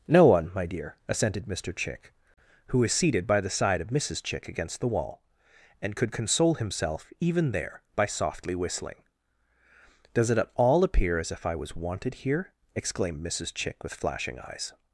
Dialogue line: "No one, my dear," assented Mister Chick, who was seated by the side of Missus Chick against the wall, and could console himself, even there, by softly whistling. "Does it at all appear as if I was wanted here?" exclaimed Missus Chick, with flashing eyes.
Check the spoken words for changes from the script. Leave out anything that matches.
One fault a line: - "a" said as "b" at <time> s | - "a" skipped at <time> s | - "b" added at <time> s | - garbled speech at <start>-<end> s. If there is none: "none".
none